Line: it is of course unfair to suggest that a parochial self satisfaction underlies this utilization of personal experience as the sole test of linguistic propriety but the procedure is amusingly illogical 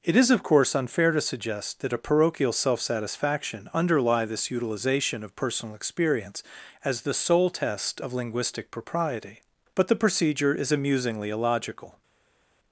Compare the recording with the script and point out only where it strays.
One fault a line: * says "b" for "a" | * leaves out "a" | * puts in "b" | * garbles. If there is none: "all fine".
* says "underlie" for "underlies"